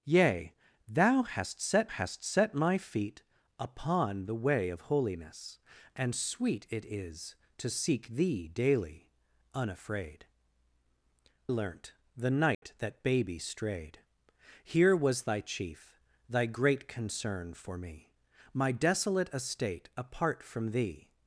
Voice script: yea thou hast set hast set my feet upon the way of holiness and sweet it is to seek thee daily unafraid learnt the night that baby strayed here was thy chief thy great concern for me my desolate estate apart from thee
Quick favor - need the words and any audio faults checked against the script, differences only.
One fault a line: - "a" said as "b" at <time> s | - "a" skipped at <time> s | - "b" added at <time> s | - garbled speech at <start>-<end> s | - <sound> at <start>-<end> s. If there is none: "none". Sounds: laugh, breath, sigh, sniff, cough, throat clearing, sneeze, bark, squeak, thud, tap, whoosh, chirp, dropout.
- dropout at 12.5-12.6 s